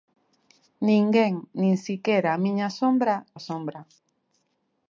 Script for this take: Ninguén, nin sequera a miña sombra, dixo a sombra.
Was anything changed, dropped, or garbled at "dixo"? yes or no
yes